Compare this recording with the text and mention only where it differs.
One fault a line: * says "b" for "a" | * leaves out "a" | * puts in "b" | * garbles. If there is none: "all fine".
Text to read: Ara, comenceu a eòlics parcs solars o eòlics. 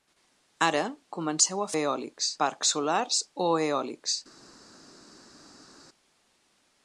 all fine